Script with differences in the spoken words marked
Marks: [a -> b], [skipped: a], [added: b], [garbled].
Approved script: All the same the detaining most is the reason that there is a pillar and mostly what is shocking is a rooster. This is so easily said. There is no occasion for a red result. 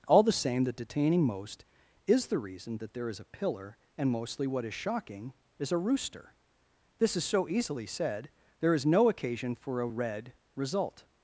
All the same the detaining most is the reason that there is a pillar and mostly what is shocking is a rooster. This is so easily said. There is no occasion for a red result.